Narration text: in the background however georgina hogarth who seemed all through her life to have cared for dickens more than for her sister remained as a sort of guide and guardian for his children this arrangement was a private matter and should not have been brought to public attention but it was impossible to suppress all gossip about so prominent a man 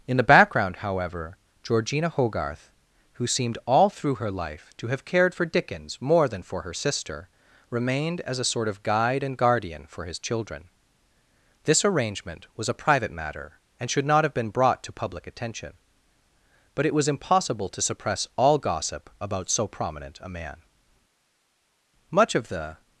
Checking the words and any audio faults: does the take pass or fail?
fail